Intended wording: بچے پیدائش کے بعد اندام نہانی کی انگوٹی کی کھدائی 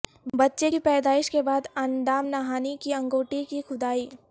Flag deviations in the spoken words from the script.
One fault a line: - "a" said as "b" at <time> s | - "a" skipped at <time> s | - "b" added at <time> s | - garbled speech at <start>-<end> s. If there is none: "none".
- "کی" added at 0.7 s